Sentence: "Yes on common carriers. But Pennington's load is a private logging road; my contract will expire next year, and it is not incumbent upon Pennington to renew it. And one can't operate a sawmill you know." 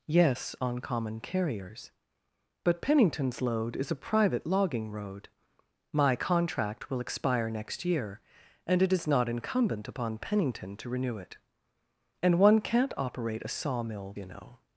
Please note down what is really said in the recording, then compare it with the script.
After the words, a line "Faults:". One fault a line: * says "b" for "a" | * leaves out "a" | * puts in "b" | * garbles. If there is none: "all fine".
"Yes on common carriers. But Pennington's load is a private logging road; my contract will expire next year, and it is not incumbent upon Pennington to renew it. And one can't operate a sawmill you know."
Faults:
all fine